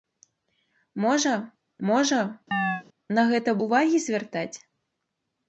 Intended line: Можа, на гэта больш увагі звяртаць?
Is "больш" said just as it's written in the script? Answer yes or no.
no